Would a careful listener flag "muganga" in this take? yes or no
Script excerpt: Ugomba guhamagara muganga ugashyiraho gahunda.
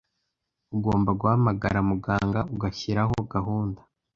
no